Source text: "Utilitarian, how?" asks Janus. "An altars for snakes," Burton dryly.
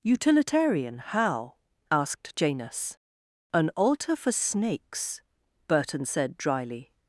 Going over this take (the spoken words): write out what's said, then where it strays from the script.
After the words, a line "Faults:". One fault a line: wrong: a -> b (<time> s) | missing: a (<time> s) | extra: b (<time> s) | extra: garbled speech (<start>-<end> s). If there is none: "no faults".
"Utilitarian, how?" asked Janus. "An altar for snakes," Burton said dryly.
Faults:
wrong: asks -> asked (1.9 s)
wrong: altars -> altar (3.8 s)
extra: said (6.1 s)